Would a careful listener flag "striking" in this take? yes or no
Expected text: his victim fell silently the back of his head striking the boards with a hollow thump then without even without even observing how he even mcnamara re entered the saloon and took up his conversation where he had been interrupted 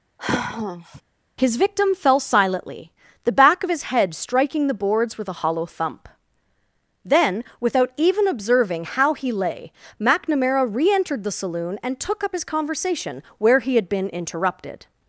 no